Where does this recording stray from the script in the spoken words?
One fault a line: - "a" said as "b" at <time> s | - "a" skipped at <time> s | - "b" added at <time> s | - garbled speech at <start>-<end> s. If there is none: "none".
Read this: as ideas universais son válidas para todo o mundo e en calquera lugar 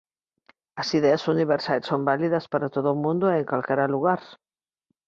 none